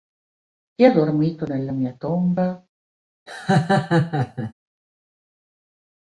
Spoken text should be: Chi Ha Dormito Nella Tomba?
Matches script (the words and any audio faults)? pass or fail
fail